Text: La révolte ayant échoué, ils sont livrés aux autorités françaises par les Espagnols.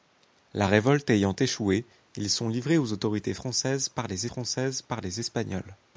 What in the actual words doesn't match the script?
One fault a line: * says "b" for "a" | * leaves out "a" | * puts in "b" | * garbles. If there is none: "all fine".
* puts in "françaises par les"